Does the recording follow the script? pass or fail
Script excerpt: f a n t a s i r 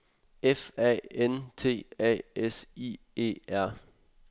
fail